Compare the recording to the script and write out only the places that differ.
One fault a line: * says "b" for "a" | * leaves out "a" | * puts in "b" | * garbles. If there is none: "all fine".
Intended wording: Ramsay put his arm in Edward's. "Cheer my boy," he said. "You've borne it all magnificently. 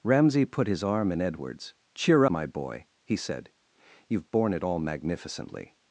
all fine